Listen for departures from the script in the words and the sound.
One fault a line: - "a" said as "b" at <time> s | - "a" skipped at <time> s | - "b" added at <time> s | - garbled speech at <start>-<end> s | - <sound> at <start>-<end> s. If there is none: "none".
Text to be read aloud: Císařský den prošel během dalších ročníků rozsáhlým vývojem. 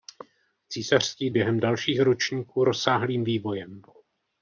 - "den prošel" skipped at 1.3 s